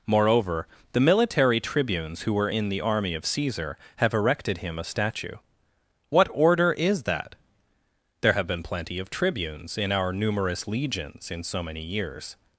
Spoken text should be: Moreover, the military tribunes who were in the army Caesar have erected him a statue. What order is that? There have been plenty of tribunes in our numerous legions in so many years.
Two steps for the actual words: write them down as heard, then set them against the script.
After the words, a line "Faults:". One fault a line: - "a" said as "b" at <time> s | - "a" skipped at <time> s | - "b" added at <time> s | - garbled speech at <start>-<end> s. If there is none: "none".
Moreover, the military tribunes who were in the army of Caesar have erected him a statue. What order is that? There have been plenty of tribunes in our numerous legions in so many years.
Faults:
- "of" added at 3.1 s